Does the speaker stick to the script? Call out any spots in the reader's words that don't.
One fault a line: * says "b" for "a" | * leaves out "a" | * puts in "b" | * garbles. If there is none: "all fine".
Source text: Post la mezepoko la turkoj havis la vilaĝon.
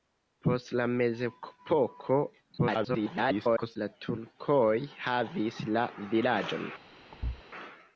* garbles